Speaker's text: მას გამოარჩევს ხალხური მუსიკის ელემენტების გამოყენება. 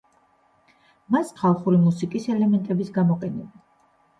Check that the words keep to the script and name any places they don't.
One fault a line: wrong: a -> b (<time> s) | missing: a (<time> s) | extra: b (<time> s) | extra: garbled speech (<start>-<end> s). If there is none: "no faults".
missing: გამოარჩევს (1.3 s)